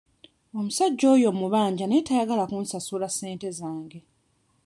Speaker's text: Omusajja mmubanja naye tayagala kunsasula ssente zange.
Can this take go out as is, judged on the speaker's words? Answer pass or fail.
fail